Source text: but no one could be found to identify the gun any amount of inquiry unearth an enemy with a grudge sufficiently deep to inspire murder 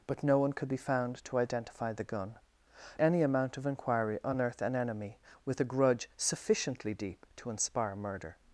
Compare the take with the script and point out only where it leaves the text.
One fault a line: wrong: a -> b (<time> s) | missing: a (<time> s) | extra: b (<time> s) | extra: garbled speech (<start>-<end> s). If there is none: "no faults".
no faults